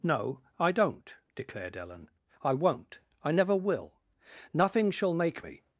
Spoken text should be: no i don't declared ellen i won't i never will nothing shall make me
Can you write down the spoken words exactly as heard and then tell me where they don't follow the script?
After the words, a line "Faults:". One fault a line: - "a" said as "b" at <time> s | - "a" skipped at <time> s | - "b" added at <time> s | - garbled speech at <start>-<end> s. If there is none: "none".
no i don't declared ellen i won't i never will nothing shall make me
Faults:
none